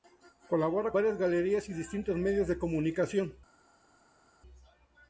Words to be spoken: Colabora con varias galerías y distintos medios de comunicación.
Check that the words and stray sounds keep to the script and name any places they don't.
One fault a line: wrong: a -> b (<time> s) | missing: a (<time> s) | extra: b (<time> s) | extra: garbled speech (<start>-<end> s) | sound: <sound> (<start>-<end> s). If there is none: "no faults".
missing: con (0.9 s)